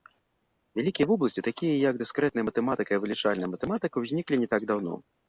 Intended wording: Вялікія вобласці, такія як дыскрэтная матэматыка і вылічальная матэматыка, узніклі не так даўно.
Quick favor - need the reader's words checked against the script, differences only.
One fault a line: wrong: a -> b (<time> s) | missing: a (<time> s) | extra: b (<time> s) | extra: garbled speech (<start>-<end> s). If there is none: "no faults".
no faults